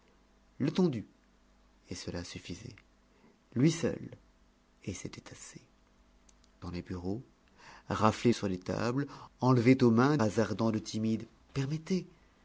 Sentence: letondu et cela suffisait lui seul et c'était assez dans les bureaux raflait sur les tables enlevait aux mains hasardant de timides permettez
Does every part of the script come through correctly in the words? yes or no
yes